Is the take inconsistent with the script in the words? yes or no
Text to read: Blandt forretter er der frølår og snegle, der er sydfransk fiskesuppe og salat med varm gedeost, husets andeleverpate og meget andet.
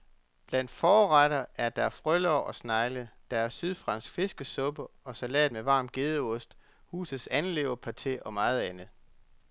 no